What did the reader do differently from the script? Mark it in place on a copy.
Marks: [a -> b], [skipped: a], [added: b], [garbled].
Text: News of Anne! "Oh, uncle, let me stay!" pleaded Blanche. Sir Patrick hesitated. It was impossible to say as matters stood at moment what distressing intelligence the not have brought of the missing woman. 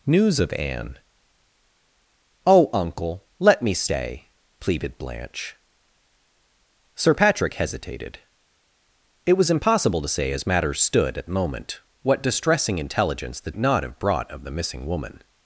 News of Anne! "Oh, uncle, let me stay!" pleaded Blanche. Sir Patrick hesitated. It was impossible to say as matters stood at moment what distressing intelligence the not have brought of the missing woman.